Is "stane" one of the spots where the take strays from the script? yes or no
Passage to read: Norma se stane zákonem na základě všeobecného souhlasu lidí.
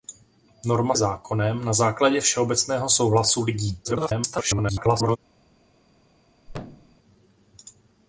yes